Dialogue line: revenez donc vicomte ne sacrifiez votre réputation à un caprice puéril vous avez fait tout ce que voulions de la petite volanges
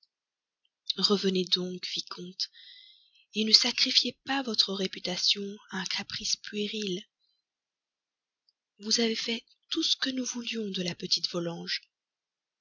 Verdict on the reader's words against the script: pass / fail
fail